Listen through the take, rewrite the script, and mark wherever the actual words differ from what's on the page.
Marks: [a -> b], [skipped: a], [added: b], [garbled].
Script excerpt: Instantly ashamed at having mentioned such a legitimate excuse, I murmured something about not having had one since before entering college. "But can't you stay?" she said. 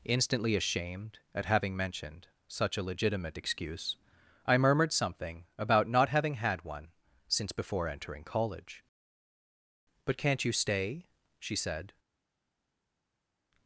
Instantly ashamed at having mentioned such a legitimate excuse, I murmured something about not having had one since before entering college. "But can't you stay?" she said.